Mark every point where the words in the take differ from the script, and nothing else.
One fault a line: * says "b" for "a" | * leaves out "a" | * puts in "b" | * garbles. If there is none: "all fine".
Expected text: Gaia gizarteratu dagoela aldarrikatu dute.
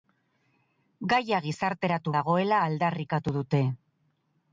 all fine